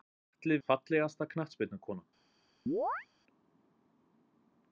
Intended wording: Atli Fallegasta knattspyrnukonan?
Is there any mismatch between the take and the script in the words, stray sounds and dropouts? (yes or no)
yes